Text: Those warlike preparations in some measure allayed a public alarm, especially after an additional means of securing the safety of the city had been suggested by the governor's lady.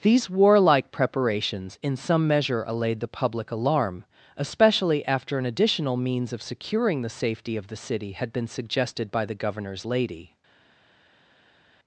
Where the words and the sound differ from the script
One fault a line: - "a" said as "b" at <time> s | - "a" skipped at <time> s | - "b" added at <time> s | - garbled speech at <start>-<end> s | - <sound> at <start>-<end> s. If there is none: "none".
- "Those" said as "These" at 0.0 s
- "a" said as "the" at 3.0 s